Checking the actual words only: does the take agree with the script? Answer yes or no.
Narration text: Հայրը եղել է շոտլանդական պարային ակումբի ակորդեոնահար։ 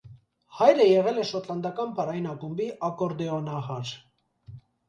yes